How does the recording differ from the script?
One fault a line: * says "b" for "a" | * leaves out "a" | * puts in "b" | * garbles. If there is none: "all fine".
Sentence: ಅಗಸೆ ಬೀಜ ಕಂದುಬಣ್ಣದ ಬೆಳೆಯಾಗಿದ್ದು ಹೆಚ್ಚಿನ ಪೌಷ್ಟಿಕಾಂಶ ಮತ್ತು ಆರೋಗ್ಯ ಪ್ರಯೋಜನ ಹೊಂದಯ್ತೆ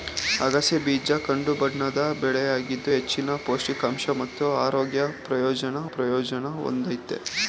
* puts in "ಪ್ರಯೋಜನ"